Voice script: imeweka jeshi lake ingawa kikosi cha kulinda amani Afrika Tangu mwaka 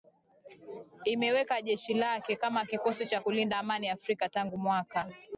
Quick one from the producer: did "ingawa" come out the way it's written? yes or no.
no